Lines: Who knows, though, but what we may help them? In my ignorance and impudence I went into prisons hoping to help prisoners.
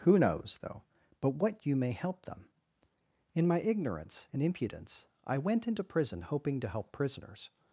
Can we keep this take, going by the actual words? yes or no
no